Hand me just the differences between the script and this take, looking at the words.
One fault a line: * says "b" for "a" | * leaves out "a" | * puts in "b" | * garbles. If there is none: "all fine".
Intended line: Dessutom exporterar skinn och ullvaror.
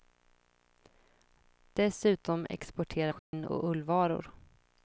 all fine